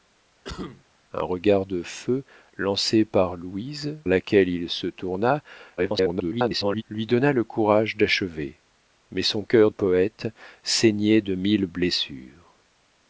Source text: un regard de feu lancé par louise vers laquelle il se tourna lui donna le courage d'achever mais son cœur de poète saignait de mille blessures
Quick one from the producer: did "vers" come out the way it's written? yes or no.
no